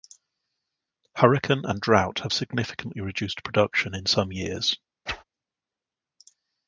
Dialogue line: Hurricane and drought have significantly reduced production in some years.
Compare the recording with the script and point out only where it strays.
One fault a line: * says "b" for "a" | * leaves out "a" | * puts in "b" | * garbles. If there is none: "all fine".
all fine